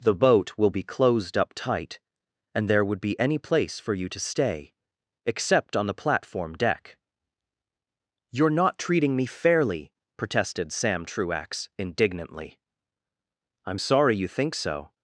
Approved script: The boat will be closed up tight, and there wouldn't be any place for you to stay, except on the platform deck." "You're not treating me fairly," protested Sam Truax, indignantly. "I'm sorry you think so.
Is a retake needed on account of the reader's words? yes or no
yes